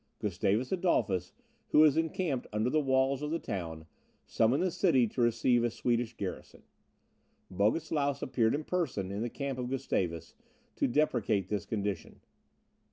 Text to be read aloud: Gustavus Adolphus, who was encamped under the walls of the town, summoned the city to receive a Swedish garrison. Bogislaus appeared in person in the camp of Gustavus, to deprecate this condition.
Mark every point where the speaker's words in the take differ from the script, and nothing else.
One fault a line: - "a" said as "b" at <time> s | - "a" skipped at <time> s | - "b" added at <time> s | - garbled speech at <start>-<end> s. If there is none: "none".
none